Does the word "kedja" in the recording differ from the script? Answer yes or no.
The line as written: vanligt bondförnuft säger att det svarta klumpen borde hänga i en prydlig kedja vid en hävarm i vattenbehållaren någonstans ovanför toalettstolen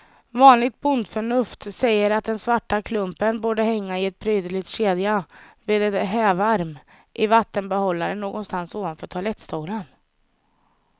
no